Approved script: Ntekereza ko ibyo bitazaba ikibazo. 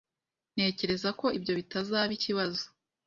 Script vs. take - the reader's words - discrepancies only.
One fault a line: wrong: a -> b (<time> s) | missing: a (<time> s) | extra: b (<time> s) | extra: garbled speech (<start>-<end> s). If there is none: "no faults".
no faults